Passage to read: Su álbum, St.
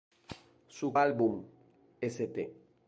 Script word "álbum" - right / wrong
right